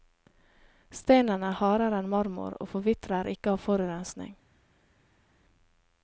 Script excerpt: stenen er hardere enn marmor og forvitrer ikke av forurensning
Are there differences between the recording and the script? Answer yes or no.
no